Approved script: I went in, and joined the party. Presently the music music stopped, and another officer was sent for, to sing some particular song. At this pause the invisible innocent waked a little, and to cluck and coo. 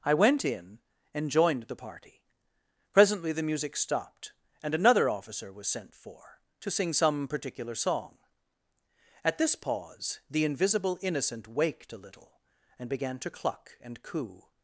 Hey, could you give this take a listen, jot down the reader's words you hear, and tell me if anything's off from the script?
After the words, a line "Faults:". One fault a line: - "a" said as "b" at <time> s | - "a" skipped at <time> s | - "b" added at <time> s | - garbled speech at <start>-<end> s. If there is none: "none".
I went in, and joined the party. Presently the music stopped, and another officer was sent for, to sing some particular song. At this pause the invisible innocent waked a little, and began to cluck and coo.
Faults:
- "music" skipped at 3.8 s
- "began" added at 12.9 s